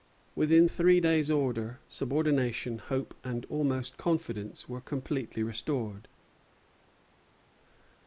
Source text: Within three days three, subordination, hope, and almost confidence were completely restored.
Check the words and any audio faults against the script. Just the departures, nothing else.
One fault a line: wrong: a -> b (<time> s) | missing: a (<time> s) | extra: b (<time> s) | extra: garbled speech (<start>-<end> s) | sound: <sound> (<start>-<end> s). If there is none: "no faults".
wrong: three -> order (1.3 s)